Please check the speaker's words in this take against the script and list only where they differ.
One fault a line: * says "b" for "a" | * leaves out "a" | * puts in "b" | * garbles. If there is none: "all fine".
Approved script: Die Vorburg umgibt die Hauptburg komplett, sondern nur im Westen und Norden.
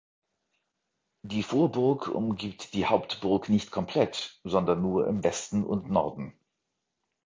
* puts in "nicht"